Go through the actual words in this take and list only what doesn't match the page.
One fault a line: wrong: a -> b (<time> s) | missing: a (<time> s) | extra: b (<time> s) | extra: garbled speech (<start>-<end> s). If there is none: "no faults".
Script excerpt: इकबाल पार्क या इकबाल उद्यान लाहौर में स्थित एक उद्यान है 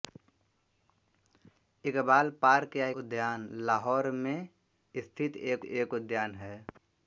missing: इकबाल (2.9 s)
extra: एक (5.6 s)